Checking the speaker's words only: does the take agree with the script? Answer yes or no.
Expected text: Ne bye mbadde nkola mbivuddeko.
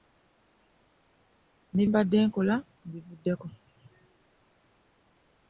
no